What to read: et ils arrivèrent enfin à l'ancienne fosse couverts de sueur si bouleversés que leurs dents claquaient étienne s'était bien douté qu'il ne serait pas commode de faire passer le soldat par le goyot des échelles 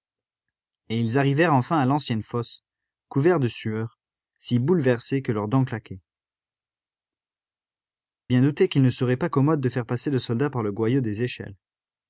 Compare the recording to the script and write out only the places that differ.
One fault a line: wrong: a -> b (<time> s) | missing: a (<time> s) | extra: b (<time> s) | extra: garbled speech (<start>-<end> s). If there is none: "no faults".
missing: étienne s'était (6.0 s)